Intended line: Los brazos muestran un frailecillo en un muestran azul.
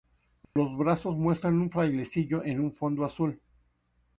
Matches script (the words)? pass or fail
fail